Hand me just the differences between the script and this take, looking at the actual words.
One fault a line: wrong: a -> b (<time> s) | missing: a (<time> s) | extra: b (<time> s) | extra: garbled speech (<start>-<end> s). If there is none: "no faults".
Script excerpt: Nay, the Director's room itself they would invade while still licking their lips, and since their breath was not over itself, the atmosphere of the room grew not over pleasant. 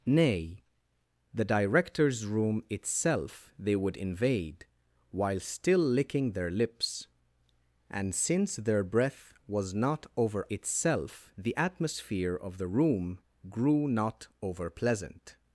no faults